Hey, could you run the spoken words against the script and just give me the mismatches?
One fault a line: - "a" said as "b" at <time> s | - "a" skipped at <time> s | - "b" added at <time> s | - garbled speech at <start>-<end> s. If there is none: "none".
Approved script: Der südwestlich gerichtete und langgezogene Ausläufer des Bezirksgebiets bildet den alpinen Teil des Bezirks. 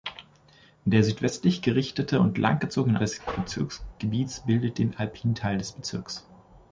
- "Ausläufer" skipped at 3.0 s